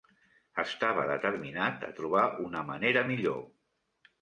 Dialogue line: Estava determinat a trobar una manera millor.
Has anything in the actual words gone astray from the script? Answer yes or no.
no